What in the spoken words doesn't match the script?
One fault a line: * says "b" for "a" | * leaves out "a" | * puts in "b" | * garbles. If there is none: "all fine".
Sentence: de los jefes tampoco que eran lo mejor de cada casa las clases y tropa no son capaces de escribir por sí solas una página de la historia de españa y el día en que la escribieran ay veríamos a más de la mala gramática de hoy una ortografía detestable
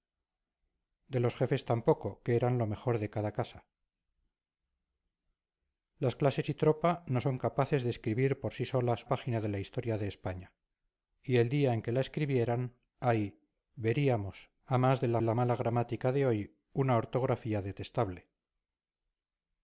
* leaves out "una"
* puts in "la"